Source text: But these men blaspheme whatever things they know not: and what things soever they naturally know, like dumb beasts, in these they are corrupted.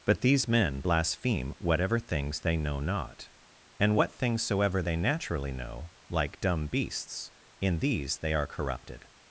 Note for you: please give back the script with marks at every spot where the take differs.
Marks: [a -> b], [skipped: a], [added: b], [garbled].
But these men blaspheme whatever things they know not: and what things soever they naturally know, like dumb beasts, in these they are corrupted.